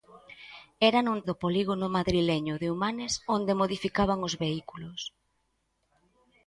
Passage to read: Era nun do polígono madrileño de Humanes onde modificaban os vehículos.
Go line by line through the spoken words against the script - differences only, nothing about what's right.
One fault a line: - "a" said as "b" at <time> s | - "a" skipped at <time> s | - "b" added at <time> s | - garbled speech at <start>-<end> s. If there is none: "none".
none